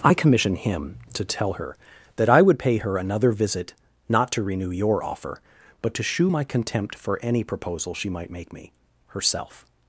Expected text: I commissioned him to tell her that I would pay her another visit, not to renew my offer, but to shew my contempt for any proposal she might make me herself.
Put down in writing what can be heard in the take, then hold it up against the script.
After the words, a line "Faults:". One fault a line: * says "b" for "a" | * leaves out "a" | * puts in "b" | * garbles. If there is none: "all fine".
I commission him to tell her that I would pay her another visit, not to renew your offer, but to shew my contempt for any proposal she might make me herself.
Faults:
* says "commission" for "commissioned"
* says "your" for "my"